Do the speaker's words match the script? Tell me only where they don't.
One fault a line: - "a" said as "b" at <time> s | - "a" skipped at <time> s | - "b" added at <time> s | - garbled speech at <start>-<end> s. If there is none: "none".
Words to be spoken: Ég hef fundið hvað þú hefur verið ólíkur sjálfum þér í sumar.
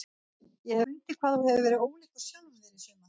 - "hef" skipped at 0.8 s